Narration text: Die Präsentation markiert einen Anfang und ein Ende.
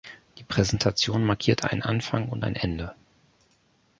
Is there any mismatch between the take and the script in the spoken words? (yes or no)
no